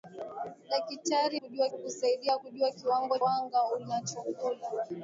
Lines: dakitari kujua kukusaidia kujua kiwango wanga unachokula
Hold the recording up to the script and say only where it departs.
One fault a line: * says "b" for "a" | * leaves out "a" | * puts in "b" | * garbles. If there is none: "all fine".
all fine